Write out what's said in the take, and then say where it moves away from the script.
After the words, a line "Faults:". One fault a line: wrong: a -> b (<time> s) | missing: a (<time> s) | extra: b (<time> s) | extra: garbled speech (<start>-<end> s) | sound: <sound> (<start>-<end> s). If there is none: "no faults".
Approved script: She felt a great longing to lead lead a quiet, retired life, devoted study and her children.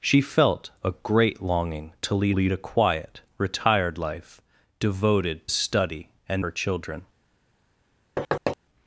She felt a great longing to lead lead a quiet, retired life, devoted study and her children.
Faults:
sound: thud (8.2-8.6 s)